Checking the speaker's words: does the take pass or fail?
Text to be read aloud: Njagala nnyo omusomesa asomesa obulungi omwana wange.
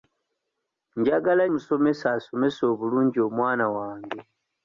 fail